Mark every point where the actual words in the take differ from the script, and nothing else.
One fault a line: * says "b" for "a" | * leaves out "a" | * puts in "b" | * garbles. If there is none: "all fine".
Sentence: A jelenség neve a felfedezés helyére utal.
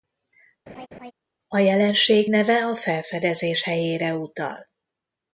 all fine